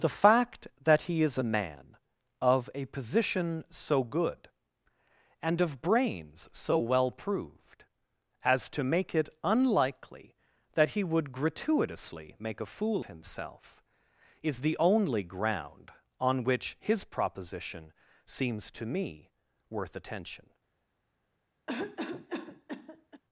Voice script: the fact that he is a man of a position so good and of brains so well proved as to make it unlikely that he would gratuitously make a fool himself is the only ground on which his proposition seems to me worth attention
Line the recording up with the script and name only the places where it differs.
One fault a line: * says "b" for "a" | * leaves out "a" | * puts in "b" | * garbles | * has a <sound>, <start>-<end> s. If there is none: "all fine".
* has a cough, 21.7-23.2 s